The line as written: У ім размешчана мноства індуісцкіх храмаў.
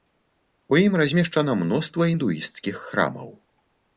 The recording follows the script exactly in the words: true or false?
true